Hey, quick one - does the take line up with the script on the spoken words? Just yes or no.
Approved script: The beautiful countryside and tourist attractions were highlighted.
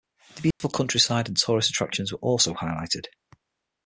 no